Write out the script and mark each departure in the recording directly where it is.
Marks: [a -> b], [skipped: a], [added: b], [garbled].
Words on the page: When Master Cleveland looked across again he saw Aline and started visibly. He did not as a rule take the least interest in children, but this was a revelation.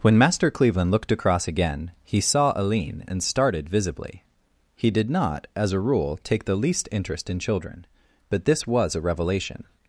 When Master Cleveland looked across again he saw Aline and started visibly. He did not as a rule take the least interest in children, but this was a revelation.